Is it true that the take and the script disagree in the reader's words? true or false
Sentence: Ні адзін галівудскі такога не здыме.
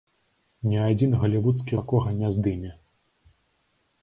false